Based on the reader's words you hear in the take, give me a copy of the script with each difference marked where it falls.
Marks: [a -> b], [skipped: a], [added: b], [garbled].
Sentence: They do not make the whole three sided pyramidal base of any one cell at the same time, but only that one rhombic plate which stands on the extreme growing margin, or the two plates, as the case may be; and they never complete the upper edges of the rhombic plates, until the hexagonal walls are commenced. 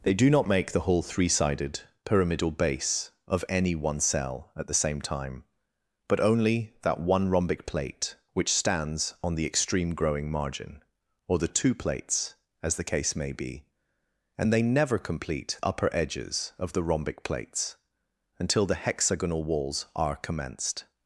They do not make the whole three sided pyramidal base of any one cell at the same time, but only that one rhombic plate which stands on the extreme growing margin, or the two plates, as the case may be; and they never complete [skipped: the] upper edges of the rhombic plates, until the hexagonal walls are commenced.